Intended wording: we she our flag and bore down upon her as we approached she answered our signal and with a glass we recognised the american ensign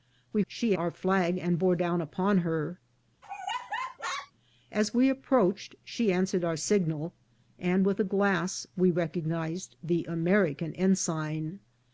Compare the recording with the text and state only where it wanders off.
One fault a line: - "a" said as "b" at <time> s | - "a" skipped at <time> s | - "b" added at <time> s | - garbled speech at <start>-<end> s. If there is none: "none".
none